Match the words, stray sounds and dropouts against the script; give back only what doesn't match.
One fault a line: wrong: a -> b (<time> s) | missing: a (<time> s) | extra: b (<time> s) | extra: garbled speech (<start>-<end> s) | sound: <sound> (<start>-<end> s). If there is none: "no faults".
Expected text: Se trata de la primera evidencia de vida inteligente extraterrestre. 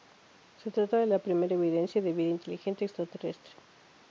no faults